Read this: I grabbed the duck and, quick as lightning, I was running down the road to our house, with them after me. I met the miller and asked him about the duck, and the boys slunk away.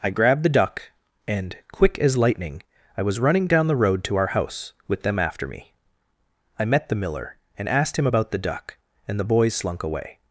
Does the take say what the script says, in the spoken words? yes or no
yes